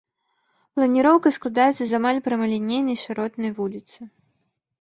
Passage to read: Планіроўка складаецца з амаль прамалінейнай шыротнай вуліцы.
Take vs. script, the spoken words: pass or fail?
pass